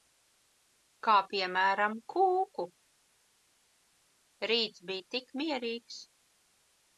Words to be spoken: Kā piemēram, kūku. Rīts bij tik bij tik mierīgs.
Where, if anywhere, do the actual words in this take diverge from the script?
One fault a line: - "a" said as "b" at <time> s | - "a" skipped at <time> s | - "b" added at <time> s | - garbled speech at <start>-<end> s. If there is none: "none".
- "bij tik" skipped at 5.3 s